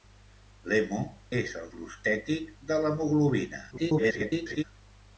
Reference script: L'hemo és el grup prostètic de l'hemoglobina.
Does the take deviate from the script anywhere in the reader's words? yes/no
yes